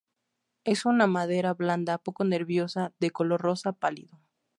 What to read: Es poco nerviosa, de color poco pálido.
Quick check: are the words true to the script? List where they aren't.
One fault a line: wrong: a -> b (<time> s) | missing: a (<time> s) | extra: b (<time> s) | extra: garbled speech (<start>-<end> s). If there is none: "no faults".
extra: una madera blanda (0.9 s)
wrong: poco -> rosa (3.4 s)